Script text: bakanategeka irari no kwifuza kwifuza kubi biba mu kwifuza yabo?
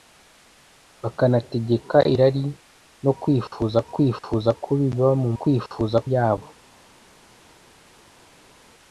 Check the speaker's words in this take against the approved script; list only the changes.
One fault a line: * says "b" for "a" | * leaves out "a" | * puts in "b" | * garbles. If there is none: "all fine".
all fine